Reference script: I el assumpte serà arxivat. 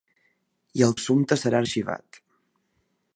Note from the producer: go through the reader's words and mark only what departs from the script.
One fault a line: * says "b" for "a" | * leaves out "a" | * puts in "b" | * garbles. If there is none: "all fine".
all fine